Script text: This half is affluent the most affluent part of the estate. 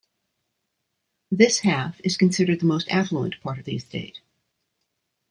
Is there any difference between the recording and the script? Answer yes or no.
yes